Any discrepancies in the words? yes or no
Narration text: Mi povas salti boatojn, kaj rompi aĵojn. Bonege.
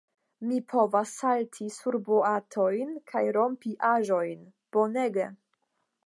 yes